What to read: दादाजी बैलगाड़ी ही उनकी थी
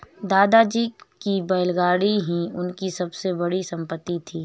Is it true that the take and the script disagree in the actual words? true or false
true